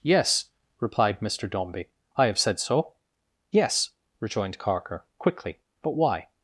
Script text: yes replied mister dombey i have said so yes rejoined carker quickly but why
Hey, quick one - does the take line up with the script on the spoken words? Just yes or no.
yes